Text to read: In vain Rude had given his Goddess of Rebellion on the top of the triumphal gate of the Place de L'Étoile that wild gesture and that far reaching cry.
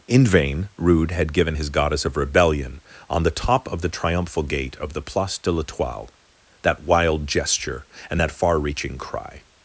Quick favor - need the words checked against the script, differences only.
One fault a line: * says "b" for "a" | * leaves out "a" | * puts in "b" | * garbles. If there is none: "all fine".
all fine